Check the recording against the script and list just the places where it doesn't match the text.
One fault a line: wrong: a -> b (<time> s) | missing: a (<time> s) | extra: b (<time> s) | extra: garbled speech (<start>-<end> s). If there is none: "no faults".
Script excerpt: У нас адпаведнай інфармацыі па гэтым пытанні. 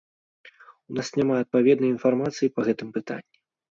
extra: няма (1.2 s)